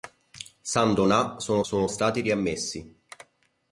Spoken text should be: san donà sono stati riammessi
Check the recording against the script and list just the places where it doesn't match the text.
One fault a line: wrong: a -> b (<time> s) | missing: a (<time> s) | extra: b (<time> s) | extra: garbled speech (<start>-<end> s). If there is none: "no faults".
extra: sono (1.6 s)